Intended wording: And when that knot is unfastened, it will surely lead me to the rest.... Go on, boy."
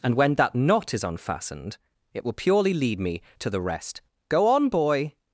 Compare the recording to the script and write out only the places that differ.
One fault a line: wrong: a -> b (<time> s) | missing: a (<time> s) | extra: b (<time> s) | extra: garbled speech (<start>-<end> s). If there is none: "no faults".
wrong: surely -> purely (2.3 s)